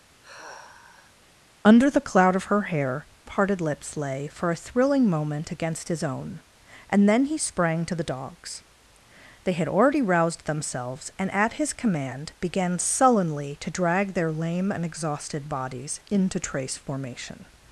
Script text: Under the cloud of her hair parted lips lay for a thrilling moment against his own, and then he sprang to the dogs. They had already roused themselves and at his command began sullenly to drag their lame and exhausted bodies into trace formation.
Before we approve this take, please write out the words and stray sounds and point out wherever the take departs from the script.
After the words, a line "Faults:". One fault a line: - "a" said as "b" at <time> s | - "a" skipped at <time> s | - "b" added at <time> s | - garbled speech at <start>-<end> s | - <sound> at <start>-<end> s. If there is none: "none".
Under the cloud of her hair parted lips lay for a thrilling moment against his own, and then he sprang to the dogs. They had already roused themselves and at his command began sullenly to drag their lame and exhausted bodies into trace formation.
Faults:
- sigh at 0.2-1.2 s